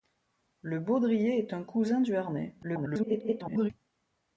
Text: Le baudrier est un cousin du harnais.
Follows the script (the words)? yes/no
no